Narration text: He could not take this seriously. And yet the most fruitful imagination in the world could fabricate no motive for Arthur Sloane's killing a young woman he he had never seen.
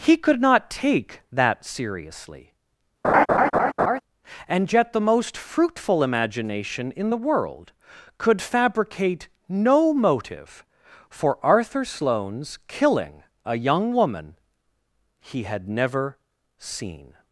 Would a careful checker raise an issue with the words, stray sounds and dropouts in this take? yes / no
yes